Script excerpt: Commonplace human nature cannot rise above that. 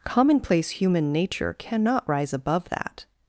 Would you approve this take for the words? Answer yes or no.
yes